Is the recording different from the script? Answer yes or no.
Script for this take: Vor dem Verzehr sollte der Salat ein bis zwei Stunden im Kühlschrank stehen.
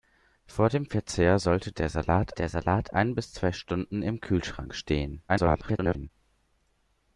yes